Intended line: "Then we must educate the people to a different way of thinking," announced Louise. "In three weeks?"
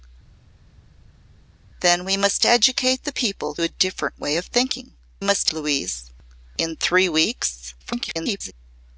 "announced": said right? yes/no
no